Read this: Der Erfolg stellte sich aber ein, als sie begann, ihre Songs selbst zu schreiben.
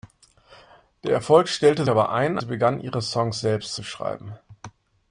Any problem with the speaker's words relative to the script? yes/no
yes